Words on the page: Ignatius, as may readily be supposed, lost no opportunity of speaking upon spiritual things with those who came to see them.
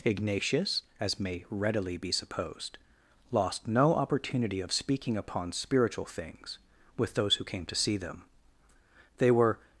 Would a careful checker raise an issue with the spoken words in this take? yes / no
yes